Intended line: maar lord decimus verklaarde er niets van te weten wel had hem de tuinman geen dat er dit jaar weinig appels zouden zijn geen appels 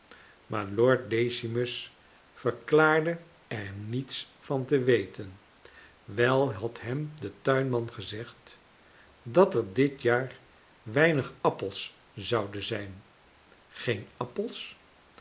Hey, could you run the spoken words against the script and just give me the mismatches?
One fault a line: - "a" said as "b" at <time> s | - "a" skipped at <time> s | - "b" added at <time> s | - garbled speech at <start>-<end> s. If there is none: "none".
- "geen" said as "gezegd" at 7.9 s